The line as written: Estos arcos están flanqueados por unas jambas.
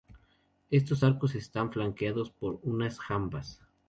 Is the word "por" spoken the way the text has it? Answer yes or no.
yes